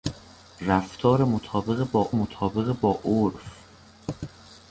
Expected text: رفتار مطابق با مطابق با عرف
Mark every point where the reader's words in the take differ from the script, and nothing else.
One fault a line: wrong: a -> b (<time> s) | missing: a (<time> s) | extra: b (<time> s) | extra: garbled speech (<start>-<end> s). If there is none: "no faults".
no faults